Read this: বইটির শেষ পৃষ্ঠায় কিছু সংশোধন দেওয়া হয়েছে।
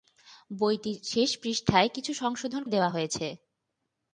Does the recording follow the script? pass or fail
pass